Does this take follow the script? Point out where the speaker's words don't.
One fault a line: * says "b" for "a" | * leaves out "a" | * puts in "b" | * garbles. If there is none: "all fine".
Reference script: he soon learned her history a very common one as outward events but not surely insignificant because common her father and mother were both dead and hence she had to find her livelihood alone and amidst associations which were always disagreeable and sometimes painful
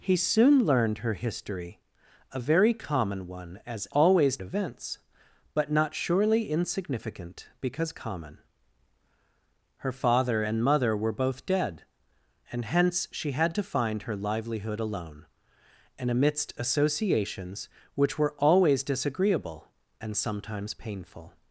* says "always" for "outward"